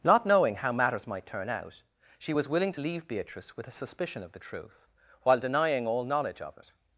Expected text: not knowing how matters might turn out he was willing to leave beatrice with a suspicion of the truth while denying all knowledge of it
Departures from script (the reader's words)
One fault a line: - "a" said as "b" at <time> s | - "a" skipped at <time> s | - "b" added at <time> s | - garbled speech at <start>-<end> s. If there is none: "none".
- "he" said as "she" at 2.2 s